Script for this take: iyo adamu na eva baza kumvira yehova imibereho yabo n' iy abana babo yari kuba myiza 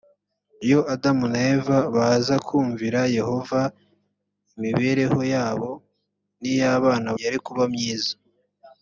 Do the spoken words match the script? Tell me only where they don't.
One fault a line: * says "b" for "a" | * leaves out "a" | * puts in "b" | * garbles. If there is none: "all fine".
* leaves out "babo"